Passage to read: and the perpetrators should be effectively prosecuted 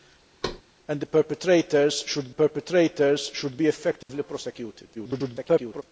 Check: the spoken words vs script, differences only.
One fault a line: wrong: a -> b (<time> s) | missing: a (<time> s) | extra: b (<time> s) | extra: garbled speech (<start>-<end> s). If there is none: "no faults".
extra: perpetrators should (2.3 s)
extra: garbled speech (4.9-5.8 s)